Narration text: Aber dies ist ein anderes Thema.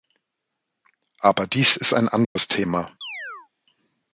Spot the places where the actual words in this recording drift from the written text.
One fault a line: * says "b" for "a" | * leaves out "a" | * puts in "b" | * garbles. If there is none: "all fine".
all fine